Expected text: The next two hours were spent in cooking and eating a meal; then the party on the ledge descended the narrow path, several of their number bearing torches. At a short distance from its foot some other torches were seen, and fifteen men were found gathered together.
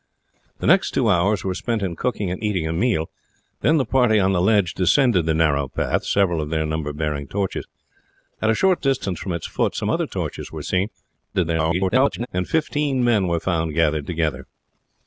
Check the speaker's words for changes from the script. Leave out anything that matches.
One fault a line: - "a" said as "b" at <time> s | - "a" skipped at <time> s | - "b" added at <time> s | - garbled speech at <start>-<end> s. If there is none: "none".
- garbled speech at 11.3-12.3 s